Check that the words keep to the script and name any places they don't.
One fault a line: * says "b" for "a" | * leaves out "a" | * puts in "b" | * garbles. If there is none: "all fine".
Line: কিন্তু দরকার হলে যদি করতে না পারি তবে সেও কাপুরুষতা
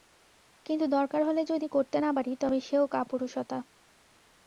all fine